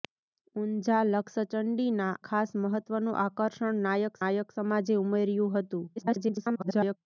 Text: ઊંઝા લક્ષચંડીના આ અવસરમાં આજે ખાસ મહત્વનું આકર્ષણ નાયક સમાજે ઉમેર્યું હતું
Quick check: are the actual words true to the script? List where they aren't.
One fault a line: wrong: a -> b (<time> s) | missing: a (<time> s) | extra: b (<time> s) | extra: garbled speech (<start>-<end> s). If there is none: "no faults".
missing: આ અવસરમાં આજે (2.1 s)
extra: નાયક (4.2 s)
extra: garbled speech (6.0-7.0 s)